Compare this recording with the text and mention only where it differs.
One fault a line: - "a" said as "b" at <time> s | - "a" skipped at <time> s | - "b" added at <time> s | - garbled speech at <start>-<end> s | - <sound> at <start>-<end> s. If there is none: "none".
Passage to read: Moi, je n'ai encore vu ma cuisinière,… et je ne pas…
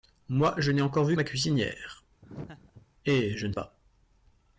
- laugh at 2.2-2.9 s